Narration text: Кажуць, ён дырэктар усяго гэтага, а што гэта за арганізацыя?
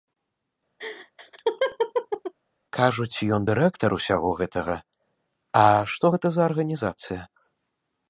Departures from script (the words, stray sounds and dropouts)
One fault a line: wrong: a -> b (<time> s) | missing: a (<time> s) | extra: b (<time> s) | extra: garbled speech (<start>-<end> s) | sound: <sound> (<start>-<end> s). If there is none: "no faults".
sound: laugh (0.8-2.3 s)